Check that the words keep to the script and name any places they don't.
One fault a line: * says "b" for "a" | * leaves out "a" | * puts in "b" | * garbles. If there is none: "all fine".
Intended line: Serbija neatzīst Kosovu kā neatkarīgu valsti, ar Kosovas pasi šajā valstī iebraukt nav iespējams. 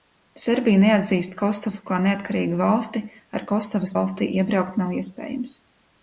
* leaves out "pasi šajā"